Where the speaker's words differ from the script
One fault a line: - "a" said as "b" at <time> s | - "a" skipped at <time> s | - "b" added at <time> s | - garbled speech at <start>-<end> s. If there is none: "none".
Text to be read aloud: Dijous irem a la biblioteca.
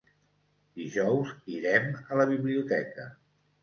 none